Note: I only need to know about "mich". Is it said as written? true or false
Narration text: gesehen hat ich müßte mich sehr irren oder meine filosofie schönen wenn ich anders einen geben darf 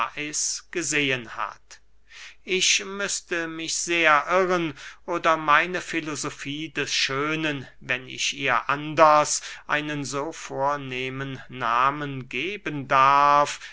true